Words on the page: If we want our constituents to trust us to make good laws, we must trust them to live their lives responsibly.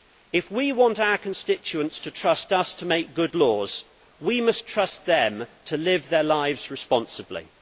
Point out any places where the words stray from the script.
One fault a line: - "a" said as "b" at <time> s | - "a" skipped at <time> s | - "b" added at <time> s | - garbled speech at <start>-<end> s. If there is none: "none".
none